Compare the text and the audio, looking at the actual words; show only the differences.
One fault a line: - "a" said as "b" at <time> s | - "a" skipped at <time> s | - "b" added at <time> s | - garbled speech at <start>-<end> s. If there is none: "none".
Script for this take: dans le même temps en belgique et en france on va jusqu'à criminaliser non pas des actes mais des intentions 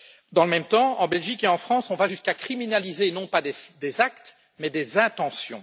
none